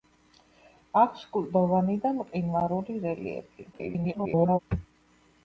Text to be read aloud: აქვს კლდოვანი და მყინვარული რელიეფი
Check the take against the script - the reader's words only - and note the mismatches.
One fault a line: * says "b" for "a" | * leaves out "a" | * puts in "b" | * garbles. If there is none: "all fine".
* garbles